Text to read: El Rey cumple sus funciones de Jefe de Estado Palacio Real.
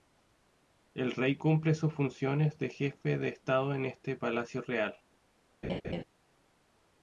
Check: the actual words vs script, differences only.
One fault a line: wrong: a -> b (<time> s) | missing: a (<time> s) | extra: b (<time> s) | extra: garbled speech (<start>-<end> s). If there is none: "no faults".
extra: en este (3.8 s)